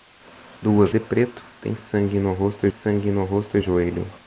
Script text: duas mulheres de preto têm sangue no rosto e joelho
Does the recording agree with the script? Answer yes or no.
no